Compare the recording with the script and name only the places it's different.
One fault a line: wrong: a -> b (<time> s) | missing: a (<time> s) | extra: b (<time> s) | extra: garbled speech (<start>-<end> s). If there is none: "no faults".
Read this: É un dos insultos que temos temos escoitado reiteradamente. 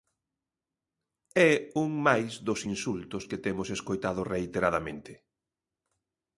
extra: máis (2.1 s)
missing: temos (3.7 s)